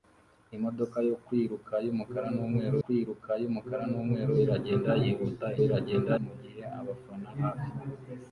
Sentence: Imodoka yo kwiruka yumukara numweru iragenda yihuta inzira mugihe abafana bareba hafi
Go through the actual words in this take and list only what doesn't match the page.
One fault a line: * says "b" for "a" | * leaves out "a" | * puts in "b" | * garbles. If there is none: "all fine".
* puts in "kwiruka yumukara numweru"
* says "iragenda" for "inzira"
* leaves out "bareba"